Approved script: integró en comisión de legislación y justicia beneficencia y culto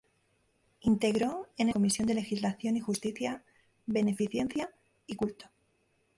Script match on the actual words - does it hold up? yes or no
yes